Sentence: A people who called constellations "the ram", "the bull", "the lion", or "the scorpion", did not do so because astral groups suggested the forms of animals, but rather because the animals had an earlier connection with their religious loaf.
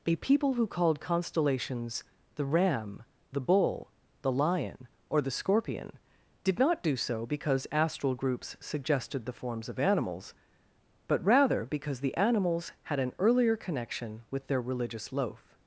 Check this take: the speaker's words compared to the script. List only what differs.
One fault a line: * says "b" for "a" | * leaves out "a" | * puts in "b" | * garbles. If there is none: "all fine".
all fine